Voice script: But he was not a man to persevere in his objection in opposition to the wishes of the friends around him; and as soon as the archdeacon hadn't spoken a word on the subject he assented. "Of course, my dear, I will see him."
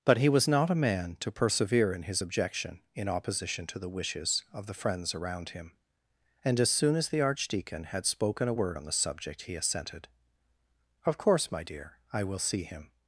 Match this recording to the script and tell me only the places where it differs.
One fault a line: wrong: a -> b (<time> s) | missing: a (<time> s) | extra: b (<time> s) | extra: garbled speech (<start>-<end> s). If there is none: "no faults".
wrong: hadn't -> had (7.9 s)